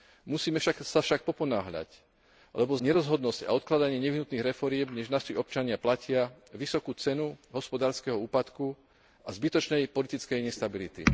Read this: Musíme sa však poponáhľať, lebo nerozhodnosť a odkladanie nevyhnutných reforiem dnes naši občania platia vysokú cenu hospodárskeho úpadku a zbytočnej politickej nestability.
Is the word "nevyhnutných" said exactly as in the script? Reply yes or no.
yes